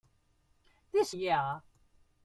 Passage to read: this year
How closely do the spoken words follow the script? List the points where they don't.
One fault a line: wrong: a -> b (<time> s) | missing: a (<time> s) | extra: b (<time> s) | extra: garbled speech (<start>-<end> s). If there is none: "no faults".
no faults